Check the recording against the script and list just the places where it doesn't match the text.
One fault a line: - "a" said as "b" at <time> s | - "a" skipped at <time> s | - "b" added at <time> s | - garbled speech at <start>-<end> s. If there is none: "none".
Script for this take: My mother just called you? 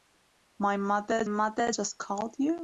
- "mother" added at 1.3 s